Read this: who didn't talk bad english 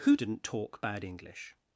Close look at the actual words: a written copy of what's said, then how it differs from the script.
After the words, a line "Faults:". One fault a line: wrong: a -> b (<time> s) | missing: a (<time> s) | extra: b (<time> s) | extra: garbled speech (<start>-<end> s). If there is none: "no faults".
who didn't talk bad english
Faults:
no faults